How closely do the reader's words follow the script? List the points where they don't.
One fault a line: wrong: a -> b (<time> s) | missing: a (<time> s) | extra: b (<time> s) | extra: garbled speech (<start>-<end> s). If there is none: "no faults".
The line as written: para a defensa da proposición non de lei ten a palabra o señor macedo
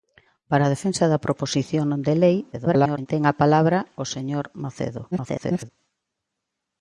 extra: garbled speech (2.5-3.1 s)
extra: garbled speech (5.1-5.7 s)